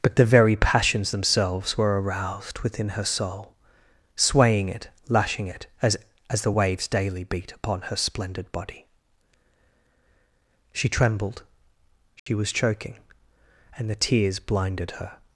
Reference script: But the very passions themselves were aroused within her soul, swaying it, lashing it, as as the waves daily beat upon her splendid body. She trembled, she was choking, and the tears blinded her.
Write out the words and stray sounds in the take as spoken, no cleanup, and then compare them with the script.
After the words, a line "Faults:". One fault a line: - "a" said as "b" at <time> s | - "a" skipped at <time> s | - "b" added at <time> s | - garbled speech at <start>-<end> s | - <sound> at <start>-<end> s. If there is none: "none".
But the very passions themselves were aroused within her soul, swaying it, lashing it, as as the waves daily beat upon her splendid body. She trembled, she was choking, and the tears blinded her.
Faults:
- dropout at 12.2-12.3 s